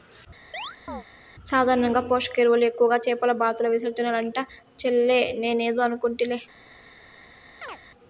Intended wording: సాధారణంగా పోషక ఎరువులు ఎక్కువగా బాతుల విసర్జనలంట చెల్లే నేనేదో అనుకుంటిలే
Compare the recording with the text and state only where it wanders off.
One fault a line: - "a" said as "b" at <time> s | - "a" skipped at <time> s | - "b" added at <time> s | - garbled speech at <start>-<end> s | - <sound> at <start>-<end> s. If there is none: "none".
- chirp at 0.5-1.0 s
- "చేపల" added at 3.0 s
- chirp at 7.6-7.8 s